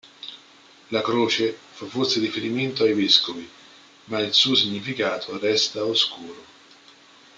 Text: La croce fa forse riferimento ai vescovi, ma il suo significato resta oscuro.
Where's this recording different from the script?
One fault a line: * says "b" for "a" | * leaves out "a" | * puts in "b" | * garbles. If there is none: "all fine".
all fine